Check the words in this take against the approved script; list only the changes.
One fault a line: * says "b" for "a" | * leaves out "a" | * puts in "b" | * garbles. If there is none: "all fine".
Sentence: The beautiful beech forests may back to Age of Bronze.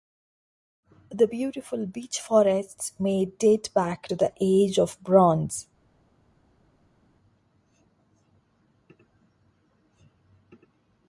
* puts in "date"
* puts in "the"